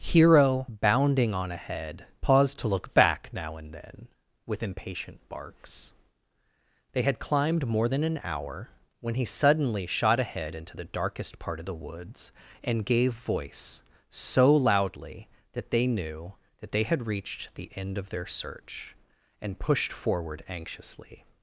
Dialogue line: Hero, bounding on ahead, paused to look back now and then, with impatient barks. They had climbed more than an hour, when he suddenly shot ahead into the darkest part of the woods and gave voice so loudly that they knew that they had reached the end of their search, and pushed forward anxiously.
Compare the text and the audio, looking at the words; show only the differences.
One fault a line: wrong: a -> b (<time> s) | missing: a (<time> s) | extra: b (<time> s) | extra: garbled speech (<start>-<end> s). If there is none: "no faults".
no faults